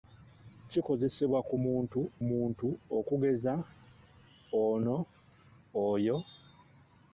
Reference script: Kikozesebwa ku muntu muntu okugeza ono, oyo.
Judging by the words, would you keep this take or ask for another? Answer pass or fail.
pass